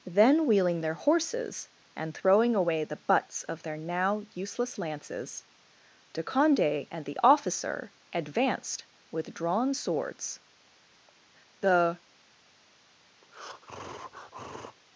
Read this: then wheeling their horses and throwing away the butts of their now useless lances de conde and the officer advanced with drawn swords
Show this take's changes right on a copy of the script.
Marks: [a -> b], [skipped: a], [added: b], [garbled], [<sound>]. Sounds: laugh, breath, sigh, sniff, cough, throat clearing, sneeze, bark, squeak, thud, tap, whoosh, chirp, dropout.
then wheeling their horses and throwing away the butts of their now useless lances de conde and the officer advanced with drawn swords [added: the] [breath]